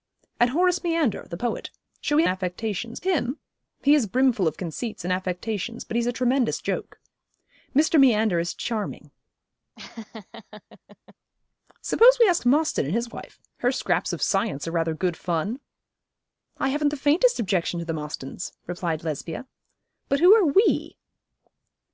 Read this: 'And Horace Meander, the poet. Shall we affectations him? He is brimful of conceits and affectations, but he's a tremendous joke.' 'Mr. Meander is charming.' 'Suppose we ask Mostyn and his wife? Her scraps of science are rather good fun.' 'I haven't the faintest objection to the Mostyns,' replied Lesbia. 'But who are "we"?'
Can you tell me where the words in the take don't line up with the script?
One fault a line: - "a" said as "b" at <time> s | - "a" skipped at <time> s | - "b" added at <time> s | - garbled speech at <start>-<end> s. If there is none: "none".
none